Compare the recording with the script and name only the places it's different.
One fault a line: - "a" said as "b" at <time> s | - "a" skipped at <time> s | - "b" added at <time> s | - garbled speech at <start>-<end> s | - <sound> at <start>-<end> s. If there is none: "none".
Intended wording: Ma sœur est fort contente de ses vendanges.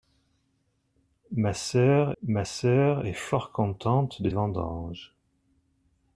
- "ma sœur" added at 2.2 s
- "ses" skipped at 4.3 s